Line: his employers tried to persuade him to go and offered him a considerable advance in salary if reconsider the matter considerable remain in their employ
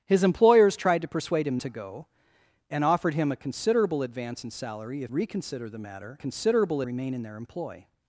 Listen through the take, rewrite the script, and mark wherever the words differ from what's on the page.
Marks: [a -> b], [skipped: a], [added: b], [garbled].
his employers tried to persuade him to go and offered him a considerable advance in salary if reconsider the matter considerable remain in their employ